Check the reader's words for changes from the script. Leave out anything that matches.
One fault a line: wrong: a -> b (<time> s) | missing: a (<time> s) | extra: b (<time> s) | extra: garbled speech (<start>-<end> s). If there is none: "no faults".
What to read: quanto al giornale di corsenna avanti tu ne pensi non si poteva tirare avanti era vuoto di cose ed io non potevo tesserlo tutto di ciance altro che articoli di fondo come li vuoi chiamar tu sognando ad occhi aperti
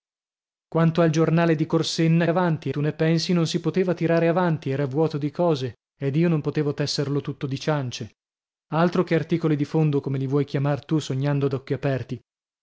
no faults